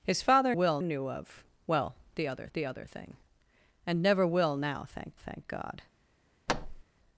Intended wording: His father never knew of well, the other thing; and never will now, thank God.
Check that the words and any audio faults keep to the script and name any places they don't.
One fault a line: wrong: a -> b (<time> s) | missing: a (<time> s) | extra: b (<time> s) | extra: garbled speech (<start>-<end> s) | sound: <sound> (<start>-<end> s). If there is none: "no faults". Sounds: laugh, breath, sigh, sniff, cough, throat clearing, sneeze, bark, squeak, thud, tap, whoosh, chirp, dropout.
wrong: never -> will (0.5 s)
extra: the other (2.5 s)
extra: thank (5.2 s)
sound: thud (6.5-6.8 s)